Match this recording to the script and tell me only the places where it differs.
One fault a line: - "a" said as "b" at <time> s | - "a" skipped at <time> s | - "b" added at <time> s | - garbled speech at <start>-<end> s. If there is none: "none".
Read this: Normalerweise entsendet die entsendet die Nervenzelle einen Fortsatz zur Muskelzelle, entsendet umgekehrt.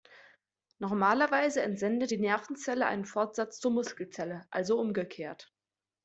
- "entsendet die" skipped at 2.2 s
- "entsendet" said as "also" at 4.5 s